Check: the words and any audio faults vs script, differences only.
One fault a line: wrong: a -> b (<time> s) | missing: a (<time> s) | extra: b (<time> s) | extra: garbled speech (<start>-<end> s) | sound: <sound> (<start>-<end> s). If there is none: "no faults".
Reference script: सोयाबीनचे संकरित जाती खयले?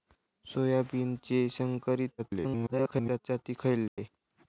extra: garbled speech (2.2-3.2 s)
sound: dropout (3.9-4.0 s)